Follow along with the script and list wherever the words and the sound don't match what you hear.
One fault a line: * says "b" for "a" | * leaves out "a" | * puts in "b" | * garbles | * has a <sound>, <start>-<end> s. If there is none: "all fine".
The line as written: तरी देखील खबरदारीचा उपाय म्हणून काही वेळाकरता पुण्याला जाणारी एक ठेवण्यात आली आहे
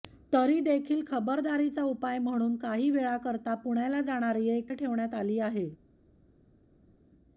all fine